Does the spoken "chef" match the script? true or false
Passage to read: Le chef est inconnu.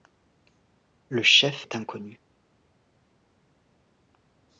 true